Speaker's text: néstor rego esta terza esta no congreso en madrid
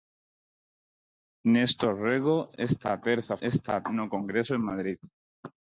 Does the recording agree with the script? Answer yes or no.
yes